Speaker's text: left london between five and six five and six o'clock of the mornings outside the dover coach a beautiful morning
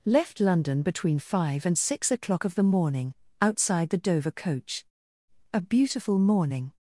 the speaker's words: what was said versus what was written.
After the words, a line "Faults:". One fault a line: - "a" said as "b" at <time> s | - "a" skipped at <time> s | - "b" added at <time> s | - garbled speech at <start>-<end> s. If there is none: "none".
left london between five and six o'clock of the morning outside the dover coach a beautiful morning
Faults:
- "five and six" skipped at 2.1 s
- "mornings" said as "morning" at 2.6 s